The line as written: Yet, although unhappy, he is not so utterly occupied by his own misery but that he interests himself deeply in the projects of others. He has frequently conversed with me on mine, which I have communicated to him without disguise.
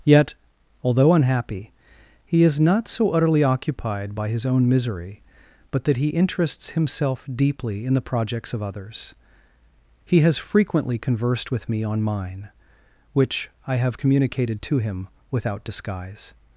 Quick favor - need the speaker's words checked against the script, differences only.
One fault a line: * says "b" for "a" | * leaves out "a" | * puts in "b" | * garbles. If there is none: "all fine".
all fine